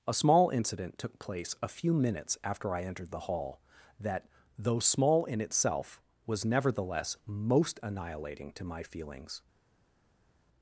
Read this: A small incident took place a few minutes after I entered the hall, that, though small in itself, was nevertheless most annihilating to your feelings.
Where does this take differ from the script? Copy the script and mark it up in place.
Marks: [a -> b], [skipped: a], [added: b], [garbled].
A small incident took place a few minutes after I entered the hall, that, though small in itself, was nevertheless most annihilating to [your -> my] feelings.